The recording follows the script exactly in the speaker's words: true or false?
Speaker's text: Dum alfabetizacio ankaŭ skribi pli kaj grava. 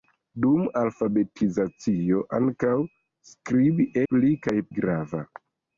true